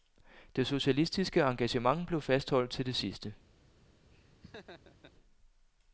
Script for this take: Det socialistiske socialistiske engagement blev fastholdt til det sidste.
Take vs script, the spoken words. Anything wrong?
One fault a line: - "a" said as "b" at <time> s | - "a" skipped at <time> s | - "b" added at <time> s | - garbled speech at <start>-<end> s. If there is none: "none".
- "socialistiske" skipped at 1.4 s